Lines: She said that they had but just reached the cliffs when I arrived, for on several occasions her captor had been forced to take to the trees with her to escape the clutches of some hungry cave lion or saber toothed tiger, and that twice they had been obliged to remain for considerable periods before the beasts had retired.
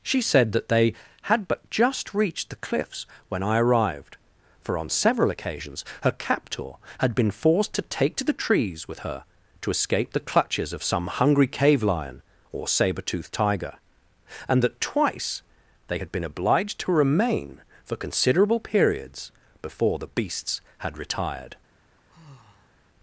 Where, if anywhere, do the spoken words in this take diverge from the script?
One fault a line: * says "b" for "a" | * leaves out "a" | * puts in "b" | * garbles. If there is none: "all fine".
all fine